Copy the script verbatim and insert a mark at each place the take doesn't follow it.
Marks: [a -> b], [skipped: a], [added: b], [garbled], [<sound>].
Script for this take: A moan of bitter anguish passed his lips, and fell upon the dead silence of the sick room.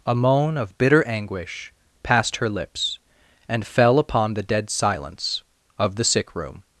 A moan of bitter anguish passed [his -> her] lips, and fell upon the dead silence of the sick room.